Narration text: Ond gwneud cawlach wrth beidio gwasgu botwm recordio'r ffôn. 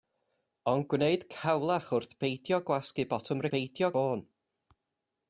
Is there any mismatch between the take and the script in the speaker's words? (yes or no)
yes